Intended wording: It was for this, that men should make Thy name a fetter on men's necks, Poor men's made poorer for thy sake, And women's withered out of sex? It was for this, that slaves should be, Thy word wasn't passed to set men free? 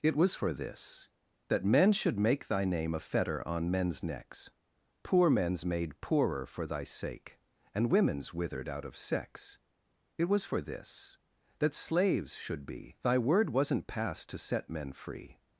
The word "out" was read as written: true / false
true